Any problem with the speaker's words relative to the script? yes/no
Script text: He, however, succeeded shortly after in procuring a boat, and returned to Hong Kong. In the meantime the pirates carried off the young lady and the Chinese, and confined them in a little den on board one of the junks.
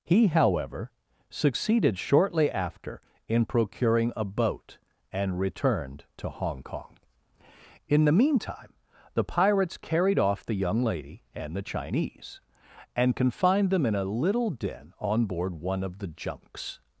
no